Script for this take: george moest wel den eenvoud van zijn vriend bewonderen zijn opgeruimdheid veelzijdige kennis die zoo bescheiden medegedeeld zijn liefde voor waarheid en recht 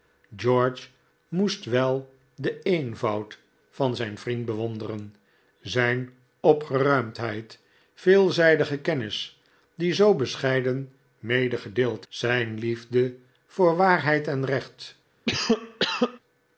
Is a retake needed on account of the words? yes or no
no